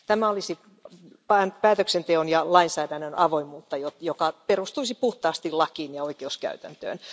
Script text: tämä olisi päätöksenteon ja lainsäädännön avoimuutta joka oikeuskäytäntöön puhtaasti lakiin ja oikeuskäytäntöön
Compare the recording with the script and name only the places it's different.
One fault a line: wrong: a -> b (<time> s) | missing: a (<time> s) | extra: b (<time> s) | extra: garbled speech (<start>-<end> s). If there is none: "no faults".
wrong: oikeuskäytäntöön -> perustuisi (4.5 s)